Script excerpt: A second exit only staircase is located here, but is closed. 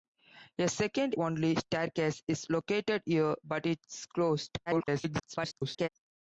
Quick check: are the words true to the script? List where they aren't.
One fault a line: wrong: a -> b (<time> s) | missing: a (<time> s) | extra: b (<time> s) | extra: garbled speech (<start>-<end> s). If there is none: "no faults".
missing: exit (1.1 s)
extra: garbled speech (4.7-5.9 s)